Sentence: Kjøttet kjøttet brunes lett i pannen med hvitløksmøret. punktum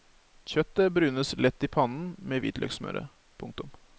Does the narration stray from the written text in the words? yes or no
yes